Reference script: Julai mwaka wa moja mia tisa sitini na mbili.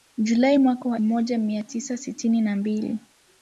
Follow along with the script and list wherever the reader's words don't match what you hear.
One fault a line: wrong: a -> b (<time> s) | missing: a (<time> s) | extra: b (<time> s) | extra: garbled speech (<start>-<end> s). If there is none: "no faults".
no faults